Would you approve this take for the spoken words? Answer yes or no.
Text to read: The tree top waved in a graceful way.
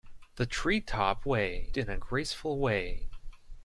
no